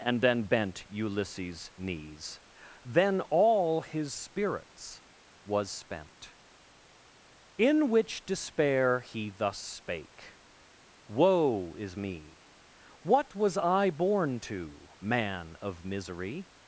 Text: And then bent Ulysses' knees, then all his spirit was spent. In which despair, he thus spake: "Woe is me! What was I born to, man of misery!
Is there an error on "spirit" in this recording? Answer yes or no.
yes